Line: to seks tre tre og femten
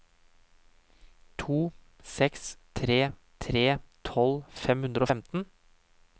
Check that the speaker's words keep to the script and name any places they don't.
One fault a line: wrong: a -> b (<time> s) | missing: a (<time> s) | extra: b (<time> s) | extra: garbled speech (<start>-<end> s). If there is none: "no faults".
extra: tolv fem hundre (4.1 s)